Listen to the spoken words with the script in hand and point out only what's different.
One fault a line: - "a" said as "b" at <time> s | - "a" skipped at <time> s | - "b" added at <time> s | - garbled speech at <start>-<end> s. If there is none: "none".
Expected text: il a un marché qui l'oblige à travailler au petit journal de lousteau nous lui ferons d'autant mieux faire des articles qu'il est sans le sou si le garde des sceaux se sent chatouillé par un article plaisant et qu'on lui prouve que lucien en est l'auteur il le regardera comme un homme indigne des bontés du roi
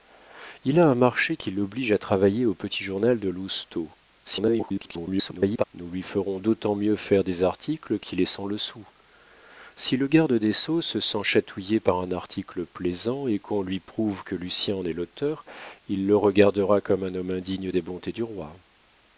- garbled speech at 4.2-5.6 s